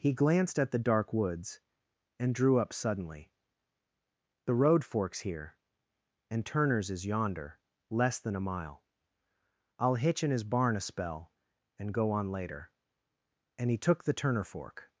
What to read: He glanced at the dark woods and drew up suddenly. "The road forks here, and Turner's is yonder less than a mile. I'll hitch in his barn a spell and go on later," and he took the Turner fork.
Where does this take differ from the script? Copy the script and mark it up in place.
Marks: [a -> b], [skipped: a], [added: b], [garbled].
He glanced at the dark woods and drew up suddenly. "The road forks here, and Turner's is yonder less than a mile. I'll hitch in his barn a spell and go on later," and he took the Turner fork.